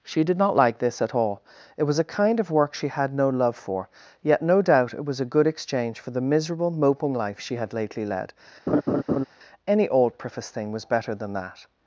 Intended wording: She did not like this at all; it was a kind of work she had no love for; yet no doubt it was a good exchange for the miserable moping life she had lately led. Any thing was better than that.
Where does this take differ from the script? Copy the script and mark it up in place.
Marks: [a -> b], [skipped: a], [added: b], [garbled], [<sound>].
She did not like this at all; it was a kind of work she had no love for; yet no doubt it was a good exchange for the miserable moping life she had lately led. [laugh] Any [added: old preface] thing was better than that.